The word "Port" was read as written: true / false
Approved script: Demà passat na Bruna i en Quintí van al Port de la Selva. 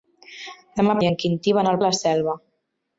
false